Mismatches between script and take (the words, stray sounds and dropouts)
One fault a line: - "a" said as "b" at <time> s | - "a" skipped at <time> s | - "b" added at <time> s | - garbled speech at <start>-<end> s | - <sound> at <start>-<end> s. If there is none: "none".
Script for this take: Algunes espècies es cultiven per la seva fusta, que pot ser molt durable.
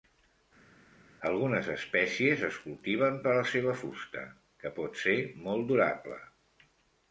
none